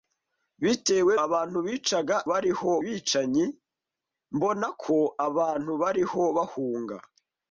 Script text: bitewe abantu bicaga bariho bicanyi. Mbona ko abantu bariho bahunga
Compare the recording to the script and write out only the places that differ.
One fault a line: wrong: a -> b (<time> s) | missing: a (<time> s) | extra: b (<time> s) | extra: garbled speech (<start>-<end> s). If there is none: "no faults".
no faults